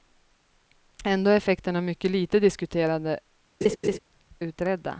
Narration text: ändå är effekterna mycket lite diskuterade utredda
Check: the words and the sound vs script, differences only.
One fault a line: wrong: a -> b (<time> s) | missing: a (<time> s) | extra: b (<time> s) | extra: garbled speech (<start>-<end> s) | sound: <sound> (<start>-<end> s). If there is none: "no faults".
sound: laugh (3.6-4.0 s)